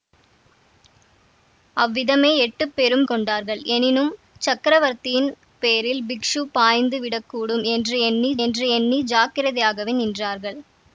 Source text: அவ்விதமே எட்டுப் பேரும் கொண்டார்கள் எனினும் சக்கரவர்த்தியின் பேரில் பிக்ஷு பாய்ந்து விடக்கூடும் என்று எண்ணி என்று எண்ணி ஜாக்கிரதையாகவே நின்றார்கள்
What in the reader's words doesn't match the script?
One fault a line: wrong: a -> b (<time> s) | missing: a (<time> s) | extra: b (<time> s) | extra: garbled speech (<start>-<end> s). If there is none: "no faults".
no faults